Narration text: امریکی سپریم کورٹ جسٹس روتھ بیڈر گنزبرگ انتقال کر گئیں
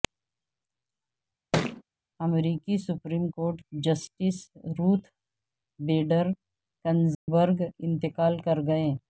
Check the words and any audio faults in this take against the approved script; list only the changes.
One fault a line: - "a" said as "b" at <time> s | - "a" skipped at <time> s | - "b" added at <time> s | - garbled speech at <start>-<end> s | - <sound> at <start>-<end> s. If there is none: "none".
- thud at 1.5-1.8 s
- dropout at 7.1-7.3 s